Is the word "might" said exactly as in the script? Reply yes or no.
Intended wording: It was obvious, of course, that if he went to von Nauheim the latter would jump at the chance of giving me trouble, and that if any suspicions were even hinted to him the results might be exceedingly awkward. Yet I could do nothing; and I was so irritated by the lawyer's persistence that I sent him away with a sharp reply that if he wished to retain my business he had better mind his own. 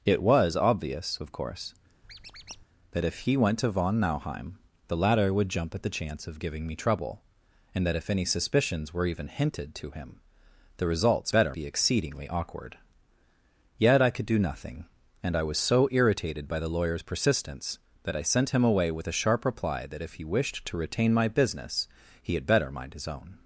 no